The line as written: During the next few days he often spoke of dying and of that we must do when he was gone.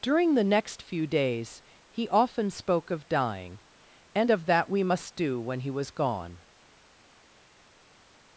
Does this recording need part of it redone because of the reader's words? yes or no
no